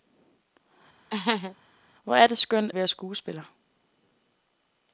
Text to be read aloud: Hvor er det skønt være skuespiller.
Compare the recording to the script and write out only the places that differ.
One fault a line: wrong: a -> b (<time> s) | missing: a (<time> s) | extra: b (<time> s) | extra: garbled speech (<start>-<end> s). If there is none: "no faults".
no faults